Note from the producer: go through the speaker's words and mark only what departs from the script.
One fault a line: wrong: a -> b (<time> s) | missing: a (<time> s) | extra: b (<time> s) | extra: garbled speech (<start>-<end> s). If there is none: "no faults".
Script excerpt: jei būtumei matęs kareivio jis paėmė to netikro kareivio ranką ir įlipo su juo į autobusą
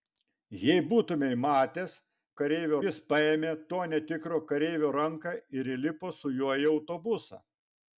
no faults